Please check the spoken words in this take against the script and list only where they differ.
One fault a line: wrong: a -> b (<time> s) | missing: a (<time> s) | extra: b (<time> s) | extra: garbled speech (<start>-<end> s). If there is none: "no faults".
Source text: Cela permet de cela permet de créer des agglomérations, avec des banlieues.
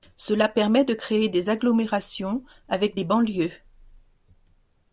missing: cela permet de (0.9 s)